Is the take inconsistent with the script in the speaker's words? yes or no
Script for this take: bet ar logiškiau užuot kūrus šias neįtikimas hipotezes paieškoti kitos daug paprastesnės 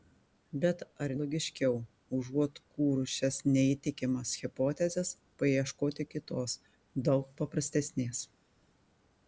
no